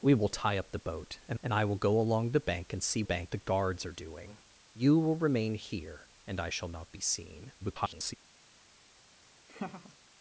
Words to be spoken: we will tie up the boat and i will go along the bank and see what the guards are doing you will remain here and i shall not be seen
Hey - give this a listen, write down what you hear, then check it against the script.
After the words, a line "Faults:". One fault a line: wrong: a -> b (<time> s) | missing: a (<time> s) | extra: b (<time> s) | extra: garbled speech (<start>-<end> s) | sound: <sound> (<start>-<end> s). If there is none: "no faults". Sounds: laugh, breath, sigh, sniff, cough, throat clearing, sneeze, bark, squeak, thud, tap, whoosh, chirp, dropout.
we will tie up the boat and and i will go along the bank and see bank the guards are doing you will remain here and i shall not be seen [garbled]
Faults:
extra: and (1.4 s)
wrong: what -> bank (3.0 s)
extra: garbled speech (7.6-8.1 s)
sound: laugh (9.5-10.0 s)